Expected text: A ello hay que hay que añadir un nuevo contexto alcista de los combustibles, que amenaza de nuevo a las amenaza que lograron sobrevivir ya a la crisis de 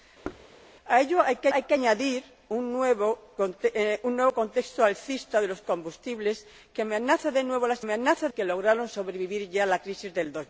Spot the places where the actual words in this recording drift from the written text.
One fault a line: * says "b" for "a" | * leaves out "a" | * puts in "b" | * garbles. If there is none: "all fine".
all fine